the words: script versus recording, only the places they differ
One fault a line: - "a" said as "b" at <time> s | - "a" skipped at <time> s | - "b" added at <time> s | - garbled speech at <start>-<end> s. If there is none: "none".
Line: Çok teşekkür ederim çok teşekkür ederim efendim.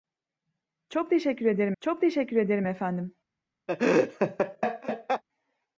none